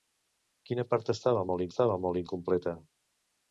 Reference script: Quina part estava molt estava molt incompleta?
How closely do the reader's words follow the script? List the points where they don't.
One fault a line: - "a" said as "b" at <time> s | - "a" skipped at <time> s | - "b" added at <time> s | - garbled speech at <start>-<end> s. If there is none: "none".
none